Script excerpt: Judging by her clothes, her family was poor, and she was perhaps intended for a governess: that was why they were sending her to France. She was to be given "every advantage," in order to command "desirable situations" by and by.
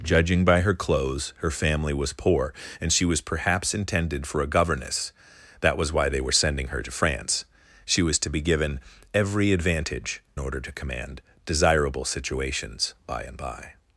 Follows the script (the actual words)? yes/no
no